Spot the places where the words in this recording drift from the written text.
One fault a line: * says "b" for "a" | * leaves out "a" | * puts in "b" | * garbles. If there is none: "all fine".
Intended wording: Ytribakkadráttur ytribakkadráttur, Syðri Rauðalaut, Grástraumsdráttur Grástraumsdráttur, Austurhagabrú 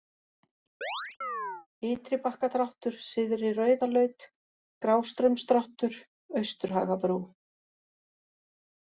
* leaves out "ytribakkadráttur"
* leaves out "Grástraumsdráttur"